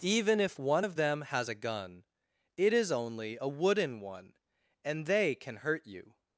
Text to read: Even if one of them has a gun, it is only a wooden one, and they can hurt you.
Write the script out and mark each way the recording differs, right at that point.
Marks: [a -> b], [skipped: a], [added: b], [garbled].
Even if one of them has a gun, it is only a wooden one, and they can hurt you.